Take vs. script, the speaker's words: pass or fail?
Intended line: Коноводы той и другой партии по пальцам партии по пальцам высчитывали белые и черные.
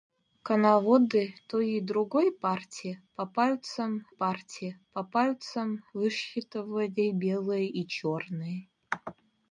pass